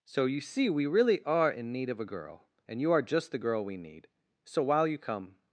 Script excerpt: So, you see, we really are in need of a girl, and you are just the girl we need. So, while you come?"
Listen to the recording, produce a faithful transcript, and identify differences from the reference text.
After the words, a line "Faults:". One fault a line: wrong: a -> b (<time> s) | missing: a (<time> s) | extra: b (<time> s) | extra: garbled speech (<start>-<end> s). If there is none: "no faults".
So, you see, we really are in need of a girl, and you are just the girl we need. So, while you come?"
Faults:
no faults